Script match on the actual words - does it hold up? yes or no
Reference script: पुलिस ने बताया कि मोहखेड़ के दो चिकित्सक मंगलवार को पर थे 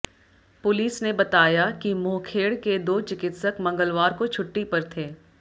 no